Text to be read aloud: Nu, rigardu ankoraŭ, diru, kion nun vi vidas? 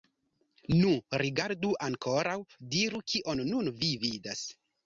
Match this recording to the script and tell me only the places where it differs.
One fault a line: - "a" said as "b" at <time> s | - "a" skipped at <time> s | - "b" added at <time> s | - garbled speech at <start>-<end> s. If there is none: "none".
none